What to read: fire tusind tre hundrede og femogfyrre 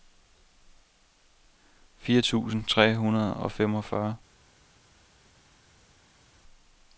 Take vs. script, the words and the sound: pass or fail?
pass